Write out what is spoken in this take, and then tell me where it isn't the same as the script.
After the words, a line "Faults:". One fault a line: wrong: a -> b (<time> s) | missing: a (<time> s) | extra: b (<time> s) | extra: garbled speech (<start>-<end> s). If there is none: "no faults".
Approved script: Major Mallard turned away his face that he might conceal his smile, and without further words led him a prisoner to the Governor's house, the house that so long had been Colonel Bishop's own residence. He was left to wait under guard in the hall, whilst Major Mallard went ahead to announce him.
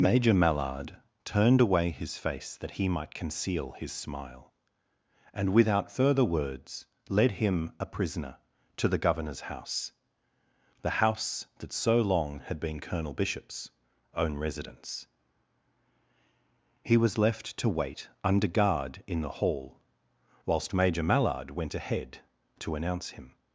Major Mallard turned away his face that he might conceal his smile, and without further words led him a prisoner to the Governor's house, the house that so long had been Colonel Bishop's own residence. He was left to wait under guard in the hall, whilst Major Mallard went ahead to announce him.
Faults:
no faults